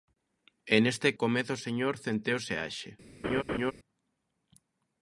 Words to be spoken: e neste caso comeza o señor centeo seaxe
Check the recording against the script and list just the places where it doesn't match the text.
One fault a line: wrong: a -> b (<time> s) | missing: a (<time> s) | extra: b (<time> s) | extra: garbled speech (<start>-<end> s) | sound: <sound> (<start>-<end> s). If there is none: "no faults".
missing: caso (1.1 s)
sound: laugh (3.2-3.7 s)